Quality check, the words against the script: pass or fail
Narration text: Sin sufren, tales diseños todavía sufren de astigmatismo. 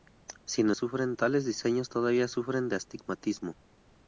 pass